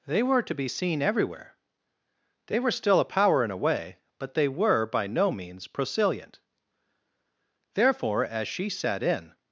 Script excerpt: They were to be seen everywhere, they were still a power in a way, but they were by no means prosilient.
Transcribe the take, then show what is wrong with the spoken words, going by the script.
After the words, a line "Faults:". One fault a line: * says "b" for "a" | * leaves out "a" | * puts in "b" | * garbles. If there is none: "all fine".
They were to be seen everywhere, they were still a power in a way, but they were by no means prosilient. Therefore, as she sat in
Faults:
* puts in "Therefore as she sat in"